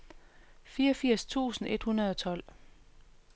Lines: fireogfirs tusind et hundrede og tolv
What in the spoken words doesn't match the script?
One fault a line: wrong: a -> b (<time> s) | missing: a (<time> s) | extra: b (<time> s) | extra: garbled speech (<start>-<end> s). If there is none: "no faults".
no faults